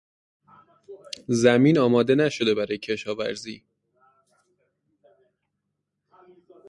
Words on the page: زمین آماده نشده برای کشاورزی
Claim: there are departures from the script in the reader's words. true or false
false